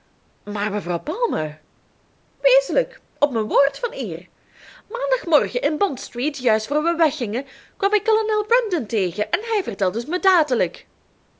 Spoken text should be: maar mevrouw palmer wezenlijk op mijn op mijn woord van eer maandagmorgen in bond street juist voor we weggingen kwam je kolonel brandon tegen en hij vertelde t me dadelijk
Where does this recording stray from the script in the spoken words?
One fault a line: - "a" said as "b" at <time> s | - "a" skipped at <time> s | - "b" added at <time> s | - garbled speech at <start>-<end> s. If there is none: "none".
- "op mijn" skipped at 3.5 s
- "je" said as "ik" at 7.9 s